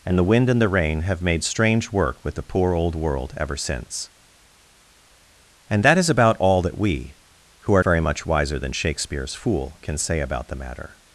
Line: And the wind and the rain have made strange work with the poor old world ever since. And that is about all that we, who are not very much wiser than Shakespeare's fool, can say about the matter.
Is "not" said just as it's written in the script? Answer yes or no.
no